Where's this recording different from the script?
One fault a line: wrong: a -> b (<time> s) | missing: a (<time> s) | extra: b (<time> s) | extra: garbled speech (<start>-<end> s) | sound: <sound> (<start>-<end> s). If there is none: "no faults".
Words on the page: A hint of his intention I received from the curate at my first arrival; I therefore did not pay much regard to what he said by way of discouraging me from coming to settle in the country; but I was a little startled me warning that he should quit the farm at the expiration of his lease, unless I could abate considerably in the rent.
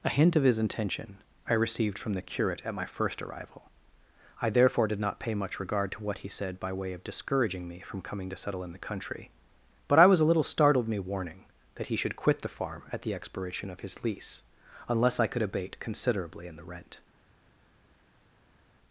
no faults